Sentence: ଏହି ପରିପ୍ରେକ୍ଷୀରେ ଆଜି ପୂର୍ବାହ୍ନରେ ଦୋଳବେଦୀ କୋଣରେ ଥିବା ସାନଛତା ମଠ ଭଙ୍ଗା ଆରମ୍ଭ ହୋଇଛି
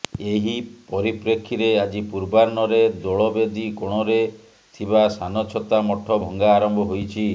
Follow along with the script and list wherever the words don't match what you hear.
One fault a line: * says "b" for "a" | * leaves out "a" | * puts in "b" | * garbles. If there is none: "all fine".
all fine